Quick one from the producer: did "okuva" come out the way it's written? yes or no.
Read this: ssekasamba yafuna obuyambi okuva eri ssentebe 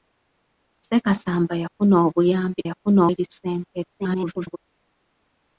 no